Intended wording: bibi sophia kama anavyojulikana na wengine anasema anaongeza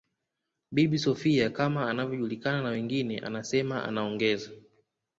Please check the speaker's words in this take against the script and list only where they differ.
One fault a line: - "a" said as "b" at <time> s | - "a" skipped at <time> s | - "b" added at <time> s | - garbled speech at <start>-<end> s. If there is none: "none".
none